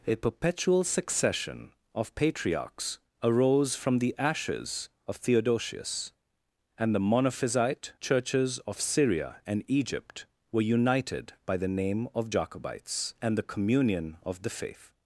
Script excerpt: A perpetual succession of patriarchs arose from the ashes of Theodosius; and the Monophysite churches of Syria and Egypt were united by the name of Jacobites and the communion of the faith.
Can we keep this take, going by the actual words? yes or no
yes